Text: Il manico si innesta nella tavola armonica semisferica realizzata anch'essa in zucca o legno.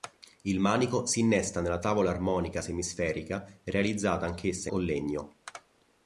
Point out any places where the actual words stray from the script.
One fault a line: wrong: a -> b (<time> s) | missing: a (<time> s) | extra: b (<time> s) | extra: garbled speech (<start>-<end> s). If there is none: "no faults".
missing: in zucca (4.7 s)